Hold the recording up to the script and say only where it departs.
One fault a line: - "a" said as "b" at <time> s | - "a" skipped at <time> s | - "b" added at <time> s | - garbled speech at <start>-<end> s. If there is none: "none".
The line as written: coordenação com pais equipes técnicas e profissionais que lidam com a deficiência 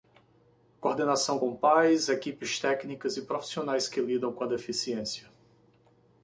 none